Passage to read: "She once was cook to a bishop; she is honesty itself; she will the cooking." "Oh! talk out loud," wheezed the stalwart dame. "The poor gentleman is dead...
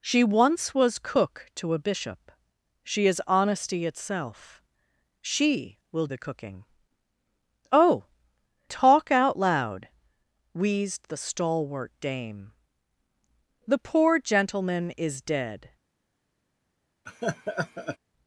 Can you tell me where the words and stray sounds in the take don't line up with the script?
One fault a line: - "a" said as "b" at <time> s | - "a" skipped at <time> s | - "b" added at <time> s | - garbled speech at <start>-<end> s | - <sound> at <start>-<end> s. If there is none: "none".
- laugh at 17.1-18.0 s